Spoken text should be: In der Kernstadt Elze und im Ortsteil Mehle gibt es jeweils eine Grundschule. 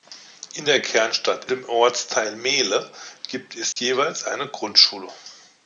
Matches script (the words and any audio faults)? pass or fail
fail